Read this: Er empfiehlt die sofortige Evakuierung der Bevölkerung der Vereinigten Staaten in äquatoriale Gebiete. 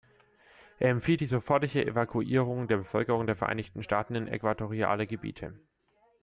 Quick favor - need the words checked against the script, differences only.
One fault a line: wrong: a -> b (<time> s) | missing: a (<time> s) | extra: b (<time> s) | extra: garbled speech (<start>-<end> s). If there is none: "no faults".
no faults